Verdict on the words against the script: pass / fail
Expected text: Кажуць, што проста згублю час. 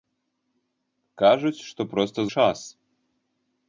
fail